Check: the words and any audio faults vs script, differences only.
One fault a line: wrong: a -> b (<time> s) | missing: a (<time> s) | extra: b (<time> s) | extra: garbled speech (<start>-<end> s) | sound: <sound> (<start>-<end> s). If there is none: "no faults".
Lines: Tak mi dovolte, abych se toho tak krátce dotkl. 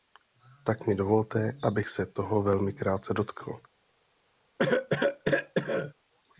wrong: tak -> velmi (2.4 s)
sound: cough (4.6-5.9 s)